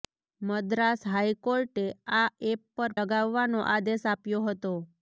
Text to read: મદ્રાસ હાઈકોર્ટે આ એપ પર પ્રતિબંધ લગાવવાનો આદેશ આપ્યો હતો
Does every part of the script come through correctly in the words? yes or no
no